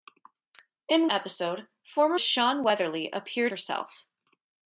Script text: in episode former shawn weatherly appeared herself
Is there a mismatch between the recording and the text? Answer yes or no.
no